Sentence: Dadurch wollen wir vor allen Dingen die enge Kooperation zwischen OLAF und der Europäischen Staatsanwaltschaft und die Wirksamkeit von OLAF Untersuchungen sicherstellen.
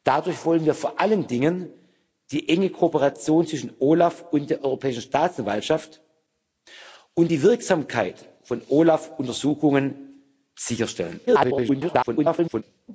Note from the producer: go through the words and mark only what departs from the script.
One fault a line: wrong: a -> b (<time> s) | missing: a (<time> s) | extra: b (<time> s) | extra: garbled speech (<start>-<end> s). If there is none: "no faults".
extra: garbled speech (11.3-12.6 s)